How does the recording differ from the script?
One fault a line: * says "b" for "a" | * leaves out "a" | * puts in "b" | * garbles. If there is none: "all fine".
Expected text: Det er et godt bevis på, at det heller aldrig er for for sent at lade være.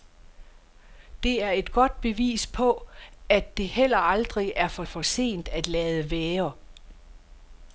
all fine